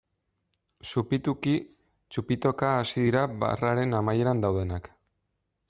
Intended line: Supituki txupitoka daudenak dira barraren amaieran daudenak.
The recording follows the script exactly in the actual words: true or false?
false